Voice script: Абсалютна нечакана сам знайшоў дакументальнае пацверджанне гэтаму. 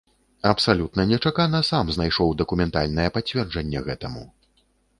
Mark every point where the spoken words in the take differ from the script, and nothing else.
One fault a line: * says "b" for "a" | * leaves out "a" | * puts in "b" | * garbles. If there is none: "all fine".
all fine